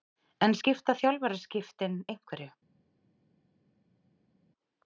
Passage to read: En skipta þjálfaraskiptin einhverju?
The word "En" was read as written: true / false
true